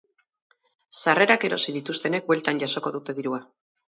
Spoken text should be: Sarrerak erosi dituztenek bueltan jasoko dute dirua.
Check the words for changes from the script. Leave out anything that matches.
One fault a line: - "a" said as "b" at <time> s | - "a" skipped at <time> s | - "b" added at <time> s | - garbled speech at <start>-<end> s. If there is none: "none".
none